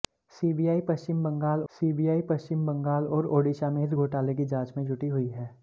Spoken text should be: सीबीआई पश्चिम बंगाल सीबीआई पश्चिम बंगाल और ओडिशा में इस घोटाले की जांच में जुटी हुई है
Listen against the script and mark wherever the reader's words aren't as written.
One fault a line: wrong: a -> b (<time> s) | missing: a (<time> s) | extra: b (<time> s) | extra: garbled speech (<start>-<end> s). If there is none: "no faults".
no faults